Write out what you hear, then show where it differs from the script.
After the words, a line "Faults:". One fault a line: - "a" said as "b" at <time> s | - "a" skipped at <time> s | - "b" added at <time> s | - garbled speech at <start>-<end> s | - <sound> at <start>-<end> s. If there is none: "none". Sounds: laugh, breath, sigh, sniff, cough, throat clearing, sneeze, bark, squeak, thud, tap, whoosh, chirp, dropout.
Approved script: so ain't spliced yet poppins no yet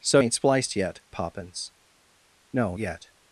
so ain't spliced yet poppins no yet
Faults:
none